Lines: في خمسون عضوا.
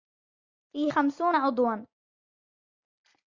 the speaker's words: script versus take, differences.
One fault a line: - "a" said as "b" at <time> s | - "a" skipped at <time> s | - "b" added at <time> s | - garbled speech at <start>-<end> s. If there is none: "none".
none